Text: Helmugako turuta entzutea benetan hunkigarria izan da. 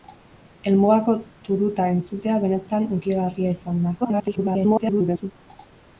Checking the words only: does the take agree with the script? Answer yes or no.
no